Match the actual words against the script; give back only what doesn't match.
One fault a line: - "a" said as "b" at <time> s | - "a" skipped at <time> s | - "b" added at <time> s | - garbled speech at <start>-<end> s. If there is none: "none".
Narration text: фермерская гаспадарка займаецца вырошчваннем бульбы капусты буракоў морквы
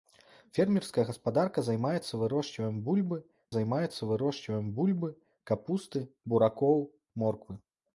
- "займаецца вырошчваннем бульбы" added at 3.5 s